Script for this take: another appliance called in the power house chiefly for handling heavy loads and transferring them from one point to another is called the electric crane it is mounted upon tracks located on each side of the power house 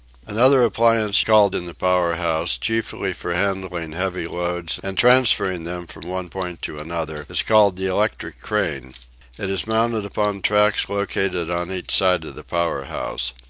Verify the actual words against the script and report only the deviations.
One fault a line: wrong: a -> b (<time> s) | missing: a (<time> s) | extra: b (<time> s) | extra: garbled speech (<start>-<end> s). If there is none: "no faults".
no faults